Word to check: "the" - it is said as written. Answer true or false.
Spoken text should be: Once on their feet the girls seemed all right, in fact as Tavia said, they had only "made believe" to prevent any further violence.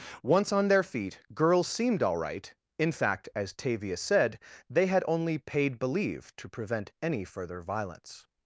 false